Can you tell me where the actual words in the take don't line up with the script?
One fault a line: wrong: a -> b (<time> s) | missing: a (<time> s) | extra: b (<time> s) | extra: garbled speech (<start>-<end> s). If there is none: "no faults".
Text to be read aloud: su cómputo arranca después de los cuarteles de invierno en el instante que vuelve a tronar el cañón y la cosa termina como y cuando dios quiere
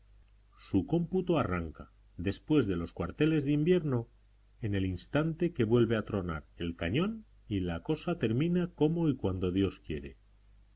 no faults